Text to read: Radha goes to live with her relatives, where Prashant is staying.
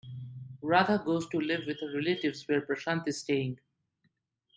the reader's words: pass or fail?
pass